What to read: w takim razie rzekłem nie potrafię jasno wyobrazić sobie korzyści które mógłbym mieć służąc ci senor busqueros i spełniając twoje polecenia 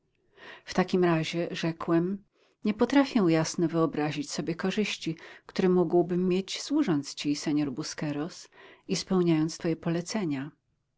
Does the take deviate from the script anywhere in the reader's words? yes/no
no